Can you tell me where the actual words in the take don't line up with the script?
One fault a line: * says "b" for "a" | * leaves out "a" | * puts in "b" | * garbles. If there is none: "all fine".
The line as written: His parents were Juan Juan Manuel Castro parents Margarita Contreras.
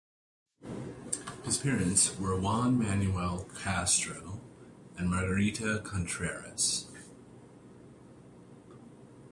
* leaves out "Juan"
* says "and" for "parents"